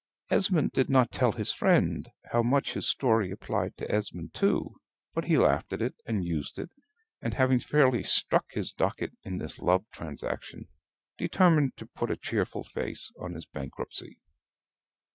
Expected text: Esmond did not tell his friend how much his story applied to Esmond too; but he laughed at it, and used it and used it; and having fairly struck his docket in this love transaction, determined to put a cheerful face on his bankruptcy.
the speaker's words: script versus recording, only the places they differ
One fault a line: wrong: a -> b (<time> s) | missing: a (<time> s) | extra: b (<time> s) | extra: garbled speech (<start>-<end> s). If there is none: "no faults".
missing: used it and (7.3 s)